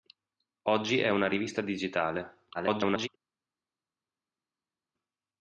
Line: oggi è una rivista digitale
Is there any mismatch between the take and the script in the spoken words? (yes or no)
yes